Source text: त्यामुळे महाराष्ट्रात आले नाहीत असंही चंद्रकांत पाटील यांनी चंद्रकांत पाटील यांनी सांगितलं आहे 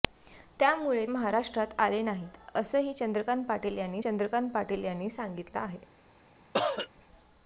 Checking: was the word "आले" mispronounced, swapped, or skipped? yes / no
no